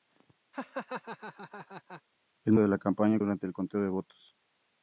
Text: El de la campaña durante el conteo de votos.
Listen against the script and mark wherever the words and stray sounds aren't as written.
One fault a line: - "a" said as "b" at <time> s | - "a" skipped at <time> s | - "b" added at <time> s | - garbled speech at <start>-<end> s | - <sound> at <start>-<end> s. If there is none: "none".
- laugh at 0.5-2.0 s